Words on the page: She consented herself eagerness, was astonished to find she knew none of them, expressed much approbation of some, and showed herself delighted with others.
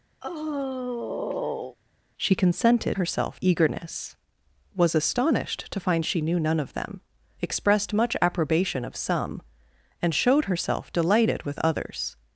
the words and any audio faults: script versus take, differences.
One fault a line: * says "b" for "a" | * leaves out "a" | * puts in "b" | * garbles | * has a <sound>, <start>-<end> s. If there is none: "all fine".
* has a sigh, 0.2-1.8 s